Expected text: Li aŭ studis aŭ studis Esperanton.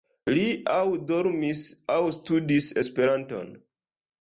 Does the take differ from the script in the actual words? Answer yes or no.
yes